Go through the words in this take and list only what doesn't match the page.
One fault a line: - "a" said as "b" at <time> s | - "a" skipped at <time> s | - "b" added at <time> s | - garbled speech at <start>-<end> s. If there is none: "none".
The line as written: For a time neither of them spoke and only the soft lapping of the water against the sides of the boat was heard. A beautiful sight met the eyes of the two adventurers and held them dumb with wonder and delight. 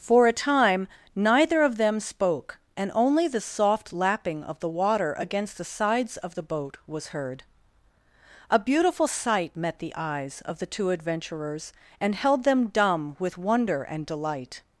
none